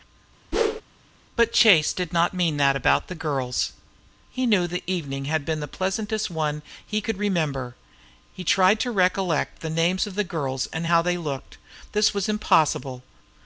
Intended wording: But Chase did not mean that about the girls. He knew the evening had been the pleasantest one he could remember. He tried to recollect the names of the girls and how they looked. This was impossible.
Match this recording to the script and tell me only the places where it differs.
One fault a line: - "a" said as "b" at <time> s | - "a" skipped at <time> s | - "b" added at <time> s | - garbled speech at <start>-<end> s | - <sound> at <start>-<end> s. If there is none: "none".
- whoosh at 0.5-0.8 s